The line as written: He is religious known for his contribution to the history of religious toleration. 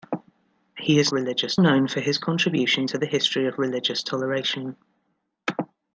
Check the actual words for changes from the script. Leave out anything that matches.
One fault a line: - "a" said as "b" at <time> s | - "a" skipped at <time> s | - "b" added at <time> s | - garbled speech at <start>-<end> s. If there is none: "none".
none